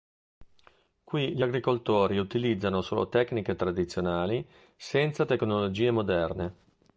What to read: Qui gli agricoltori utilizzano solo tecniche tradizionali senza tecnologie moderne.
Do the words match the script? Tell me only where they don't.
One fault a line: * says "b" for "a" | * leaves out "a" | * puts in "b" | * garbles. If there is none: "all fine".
all fine